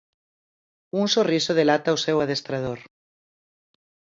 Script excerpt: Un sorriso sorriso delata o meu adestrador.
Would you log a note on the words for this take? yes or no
yes